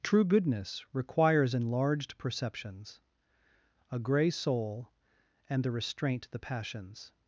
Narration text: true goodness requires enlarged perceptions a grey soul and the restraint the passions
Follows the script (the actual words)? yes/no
yes